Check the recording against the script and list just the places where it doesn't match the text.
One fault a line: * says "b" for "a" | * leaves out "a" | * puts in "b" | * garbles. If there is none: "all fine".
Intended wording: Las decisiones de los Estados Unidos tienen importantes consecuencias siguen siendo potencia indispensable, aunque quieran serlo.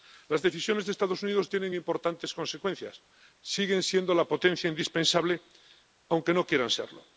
* puts in "la"
* puts in "no"